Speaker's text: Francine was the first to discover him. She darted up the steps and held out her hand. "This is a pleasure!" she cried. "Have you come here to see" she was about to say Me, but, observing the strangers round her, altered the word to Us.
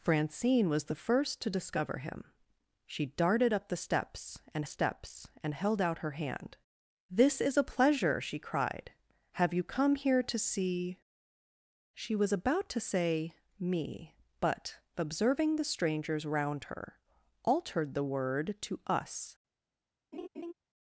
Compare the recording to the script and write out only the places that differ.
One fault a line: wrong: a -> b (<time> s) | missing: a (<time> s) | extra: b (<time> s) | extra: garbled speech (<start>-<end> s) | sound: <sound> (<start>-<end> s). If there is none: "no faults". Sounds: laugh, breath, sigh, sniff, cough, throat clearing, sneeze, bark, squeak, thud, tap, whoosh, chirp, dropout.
extra: steps and (4.6 s)
sound: laugh (20.1-20.5 s)